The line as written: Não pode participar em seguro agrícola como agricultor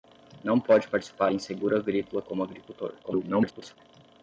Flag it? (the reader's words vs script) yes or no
yes